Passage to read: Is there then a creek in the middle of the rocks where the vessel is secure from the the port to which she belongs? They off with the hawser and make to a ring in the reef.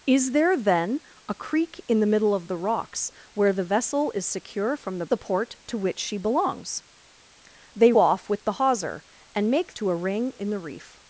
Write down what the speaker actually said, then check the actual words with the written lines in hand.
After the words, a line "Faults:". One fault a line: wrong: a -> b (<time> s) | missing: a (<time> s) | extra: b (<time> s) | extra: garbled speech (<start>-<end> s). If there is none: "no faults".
Is there then a creek in the middle of the rocks where the vessel is secure from the the port to which she belongs? They off with the hawser and make to a ring in the reef.
Faults:
no faults